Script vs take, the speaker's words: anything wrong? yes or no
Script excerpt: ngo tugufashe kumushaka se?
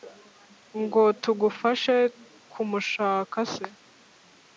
no